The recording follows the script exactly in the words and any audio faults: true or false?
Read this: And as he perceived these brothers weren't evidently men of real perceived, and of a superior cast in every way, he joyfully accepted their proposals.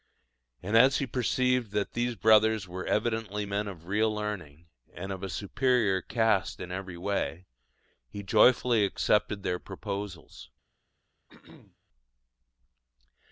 false